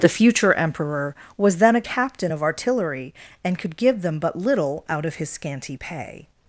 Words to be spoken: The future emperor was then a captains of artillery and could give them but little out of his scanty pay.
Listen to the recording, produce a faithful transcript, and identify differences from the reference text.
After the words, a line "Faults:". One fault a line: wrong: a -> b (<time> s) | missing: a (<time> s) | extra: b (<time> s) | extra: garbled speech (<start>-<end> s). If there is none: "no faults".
The future emperor was then a captain of artillery and could give them but little out of his scanty pay.
Faults:
wrong: captains -> captain (1.8 s)